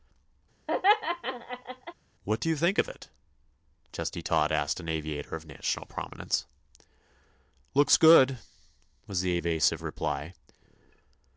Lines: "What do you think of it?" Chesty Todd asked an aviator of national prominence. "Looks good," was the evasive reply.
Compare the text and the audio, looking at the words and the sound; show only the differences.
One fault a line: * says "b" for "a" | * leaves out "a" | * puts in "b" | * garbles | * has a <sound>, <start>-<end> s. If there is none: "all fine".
* has a laugh, 0.7-1.9 s